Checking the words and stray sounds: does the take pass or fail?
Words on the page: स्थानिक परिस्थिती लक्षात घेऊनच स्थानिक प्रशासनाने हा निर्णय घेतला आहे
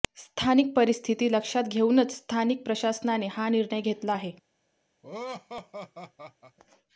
fail